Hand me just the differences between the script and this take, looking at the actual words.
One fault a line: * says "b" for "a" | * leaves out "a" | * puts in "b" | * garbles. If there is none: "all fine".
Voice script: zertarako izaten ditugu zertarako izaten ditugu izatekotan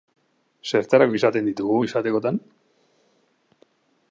* leaves out "zertarako izaten ditugu"